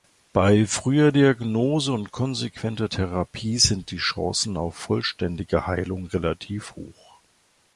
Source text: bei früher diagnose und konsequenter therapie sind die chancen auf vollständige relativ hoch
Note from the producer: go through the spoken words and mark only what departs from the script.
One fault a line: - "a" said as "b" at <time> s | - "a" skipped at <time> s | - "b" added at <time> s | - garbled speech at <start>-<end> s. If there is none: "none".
- "heilung" added at 5.7 s